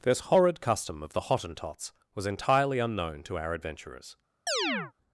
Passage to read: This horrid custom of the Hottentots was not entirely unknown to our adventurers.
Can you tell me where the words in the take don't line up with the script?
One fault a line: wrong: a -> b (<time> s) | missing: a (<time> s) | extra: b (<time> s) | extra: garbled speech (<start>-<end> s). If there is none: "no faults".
missing: not (2.3 s)